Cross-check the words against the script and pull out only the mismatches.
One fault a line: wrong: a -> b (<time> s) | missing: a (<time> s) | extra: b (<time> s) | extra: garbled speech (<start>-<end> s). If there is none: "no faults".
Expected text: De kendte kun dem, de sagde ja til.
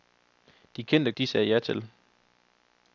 missing: kun dem (1.1 s)